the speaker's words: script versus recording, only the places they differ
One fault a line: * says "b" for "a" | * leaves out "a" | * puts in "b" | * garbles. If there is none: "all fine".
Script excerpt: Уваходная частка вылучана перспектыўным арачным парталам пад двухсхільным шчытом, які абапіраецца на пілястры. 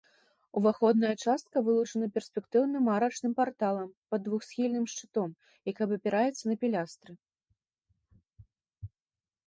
all fine